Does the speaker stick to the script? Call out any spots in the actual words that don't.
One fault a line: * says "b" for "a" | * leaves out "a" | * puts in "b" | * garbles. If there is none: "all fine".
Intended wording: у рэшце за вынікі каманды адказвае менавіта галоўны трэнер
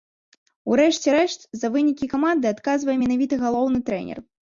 * puts in "рэшт"